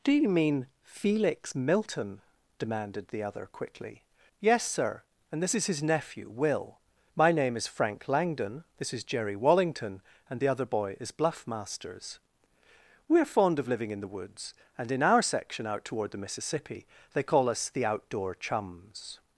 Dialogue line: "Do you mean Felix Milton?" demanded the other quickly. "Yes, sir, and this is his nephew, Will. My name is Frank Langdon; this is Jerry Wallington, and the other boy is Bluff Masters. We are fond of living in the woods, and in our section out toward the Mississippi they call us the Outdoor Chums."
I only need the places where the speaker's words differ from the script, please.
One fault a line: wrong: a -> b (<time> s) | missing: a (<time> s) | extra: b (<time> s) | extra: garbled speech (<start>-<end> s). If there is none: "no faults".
no faults